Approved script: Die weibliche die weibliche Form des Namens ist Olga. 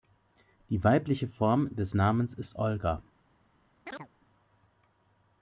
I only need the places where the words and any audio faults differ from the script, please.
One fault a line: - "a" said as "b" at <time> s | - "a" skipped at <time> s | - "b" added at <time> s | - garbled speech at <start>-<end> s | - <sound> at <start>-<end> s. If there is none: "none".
- "die weibliche" skipped at 1.3 s
- chirp at 3.9-4.1 s